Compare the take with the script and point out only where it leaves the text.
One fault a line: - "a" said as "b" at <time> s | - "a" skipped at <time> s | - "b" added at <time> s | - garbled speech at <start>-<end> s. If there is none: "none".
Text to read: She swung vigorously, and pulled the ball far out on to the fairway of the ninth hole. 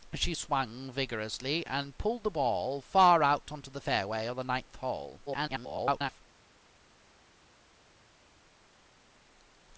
- garbled speech at 5.3-6.2 s